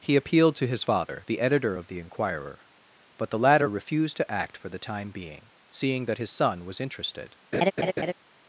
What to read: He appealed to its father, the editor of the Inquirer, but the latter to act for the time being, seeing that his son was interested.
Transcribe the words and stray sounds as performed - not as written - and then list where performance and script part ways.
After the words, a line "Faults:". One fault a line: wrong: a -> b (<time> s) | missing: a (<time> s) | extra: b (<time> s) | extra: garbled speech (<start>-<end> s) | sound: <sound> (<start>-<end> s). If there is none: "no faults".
He appealed to his father, the editor of the Inquirer, but the latter refused to act for the time being, seeing that his son was interested.
Faults:
wrong: its -> his (0.7 s)
extra: refused (3.7 s)
sound: laugh (7.5-8.1 s)